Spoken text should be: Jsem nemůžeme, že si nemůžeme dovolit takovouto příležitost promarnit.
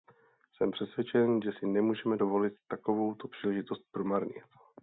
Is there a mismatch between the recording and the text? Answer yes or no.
yes